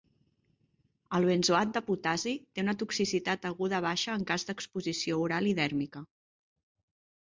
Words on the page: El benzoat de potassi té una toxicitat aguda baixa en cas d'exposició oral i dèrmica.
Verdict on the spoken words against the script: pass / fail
pass